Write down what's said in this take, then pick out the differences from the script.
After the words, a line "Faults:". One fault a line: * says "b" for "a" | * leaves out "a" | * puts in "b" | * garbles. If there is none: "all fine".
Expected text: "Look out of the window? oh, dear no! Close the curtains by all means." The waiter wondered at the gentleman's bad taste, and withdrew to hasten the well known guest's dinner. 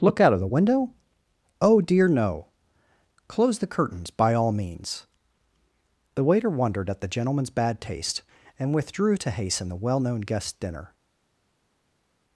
"Look out of the window? oh, dear no! Close the curtains by all means." The waiter wondered at the gentleman's bad taste, and withdrew to hasten the well known guest's dinner.
Faults:
all fine